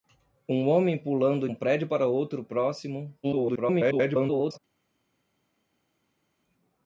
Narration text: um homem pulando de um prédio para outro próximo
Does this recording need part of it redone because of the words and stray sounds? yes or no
yes